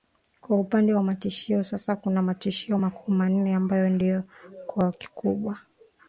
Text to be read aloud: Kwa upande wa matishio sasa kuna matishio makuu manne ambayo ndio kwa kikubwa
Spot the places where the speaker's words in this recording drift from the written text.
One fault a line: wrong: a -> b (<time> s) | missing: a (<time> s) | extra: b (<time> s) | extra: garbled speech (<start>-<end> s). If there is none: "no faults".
no faults